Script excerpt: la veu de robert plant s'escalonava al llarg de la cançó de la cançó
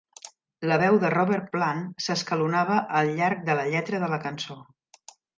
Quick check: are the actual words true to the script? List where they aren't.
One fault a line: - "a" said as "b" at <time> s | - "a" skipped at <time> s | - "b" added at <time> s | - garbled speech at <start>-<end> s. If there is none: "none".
- "cançó" said as "lletra" at 3.7 s